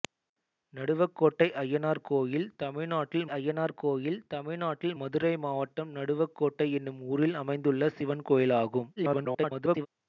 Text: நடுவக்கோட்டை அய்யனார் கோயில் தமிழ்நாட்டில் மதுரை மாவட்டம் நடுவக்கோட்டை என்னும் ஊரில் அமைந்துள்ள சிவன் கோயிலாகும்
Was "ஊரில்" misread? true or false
false